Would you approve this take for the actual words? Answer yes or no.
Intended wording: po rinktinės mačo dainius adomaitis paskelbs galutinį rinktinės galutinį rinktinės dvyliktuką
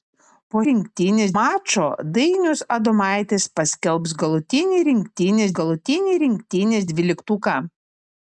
yes